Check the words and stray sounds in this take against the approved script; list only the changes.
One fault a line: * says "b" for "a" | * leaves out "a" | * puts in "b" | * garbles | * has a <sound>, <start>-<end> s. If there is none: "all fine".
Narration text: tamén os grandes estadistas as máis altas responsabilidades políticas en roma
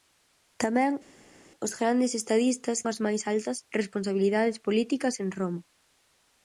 all fine